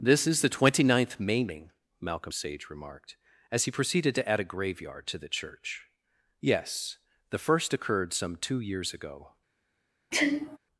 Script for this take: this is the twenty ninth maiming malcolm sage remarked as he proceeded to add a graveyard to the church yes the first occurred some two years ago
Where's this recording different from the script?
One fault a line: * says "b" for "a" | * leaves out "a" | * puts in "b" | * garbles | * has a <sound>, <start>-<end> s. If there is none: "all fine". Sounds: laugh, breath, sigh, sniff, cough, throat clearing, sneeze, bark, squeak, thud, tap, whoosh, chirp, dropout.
* has a sneeze, 10.1-10.6 s